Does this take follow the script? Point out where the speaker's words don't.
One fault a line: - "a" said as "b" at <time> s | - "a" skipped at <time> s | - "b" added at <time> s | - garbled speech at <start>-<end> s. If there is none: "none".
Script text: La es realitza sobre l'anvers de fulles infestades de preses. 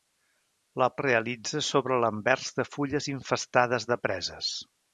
none